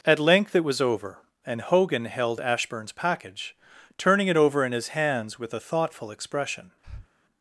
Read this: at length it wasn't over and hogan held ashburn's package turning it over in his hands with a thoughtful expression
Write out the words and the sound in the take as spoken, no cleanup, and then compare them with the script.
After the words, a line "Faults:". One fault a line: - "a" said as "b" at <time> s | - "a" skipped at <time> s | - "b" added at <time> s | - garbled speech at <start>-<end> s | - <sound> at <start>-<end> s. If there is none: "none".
at length it was over and hogan held ashburn's package turning it over in his hands with a thoughtful expression
Faults:
- "wasn't" said as "was" at 0.6 s
- breath at 6.8-7.1 s